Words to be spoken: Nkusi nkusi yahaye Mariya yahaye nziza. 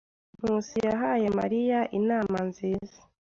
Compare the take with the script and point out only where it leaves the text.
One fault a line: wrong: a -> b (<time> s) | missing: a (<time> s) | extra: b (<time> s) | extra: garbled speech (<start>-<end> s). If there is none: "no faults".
missing: nkusi (0.8 s)
wrong: yahaye -> inama (2.0 s)